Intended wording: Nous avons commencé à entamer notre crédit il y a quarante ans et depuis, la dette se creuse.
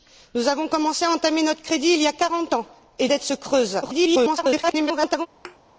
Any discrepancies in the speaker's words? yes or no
yes